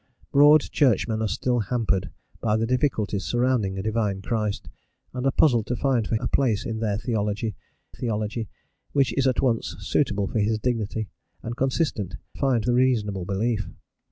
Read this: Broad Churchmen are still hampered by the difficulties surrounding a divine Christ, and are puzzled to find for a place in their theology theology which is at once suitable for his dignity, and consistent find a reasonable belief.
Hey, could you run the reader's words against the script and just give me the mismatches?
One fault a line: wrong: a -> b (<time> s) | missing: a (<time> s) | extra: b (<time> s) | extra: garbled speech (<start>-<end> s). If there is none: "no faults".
no faults